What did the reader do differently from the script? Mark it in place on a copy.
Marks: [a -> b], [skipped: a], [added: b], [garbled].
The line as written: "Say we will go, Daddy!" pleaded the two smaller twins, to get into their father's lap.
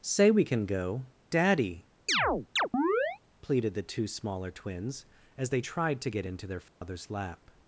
"Say we [will -> can] go, Daddy!" pleaded the two smaller twins, [added: as they tried] to get into their father's lap.